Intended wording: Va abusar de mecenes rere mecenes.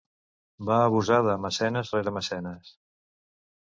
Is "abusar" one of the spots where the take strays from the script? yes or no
no